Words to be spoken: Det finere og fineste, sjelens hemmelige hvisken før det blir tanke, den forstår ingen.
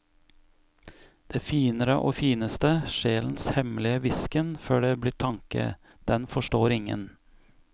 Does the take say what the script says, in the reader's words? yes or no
yes